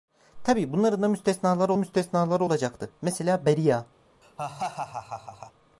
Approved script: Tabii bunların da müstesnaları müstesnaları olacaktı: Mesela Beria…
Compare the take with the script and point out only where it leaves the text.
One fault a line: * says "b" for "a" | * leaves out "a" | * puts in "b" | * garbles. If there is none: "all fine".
all fine